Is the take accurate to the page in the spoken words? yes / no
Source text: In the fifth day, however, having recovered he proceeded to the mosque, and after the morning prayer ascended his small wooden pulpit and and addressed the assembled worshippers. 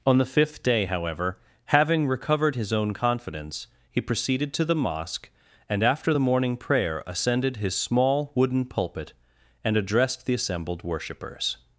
no